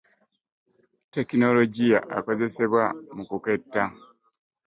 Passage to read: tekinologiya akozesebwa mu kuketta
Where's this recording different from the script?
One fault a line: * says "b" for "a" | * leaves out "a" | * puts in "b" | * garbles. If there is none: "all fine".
all fine